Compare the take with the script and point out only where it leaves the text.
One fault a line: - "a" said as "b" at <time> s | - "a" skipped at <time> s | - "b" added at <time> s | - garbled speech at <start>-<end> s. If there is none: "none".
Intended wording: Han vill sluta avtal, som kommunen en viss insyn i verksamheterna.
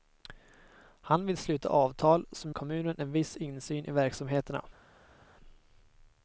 none